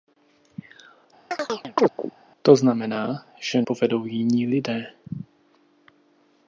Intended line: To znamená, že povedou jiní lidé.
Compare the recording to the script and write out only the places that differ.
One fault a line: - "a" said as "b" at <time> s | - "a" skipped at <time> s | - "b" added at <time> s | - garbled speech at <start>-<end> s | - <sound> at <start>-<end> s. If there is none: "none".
- chirp at 1.3-2.1 s